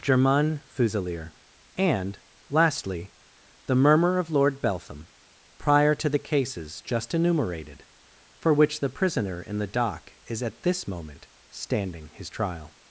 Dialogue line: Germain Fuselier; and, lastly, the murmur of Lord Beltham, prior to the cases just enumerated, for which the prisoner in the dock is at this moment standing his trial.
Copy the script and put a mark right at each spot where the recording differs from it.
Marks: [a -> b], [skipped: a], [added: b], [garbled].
Germain Fuselier; and, lastly, the murmur of Lord Beltham, prior to the cases just enumerated, for which the prisoner in the dock is at this moment standing his trial.